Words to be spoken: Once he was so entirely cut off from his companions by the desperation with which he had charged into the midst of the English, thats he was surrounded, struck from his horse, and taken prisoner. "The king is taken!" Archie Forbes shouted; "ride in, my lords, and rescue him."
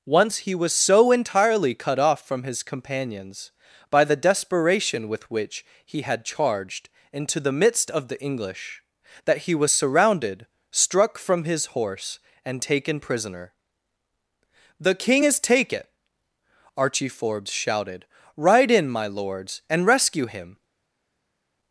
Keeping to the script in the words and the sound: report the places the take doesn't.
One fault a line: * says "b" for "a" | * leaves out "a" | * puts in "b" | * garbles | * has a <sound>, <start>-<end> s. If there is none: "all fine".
* says "that" for "thats"